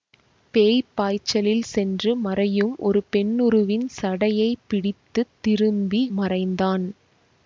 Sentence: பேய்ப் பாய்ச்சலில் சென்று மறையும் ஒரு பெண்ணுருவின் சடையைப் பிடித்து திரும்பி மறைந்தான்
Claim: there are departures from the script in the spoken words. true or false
false